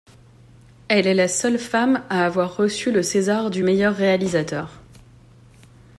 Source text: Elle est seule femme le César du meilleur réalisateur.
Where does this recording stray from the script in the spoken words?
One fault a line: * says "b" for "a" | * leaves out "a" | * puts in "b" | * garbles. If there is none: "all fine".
* puts in "la"
* puts in "à avoir reçu"